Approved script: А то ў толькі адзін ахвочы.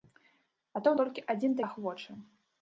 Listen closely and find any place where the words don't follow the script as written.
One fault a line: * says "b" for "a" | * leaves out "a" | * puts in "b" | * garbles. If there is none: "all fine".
all fine